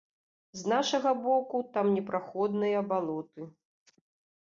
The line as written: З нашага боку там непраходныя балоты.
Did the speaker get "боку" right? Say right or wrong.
right